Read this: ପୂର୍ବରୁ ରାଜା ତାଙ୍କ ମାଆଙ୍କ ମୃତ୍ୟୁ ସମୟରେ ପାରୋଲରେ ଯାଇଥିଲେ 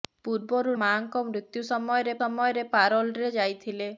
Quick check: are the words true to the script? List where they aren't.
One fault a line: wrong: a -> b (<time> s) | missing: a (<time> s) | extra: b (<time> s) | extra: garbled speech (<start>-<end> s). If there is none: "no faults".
missing: ରାଜା ତାଙ୍କ (0.7 s)
extra: ସମୟରେ (2.2 s)